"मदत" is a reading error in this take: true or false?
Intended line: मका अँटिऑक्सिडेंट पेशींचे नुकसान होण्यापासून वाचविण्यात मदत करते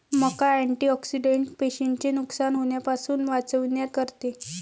true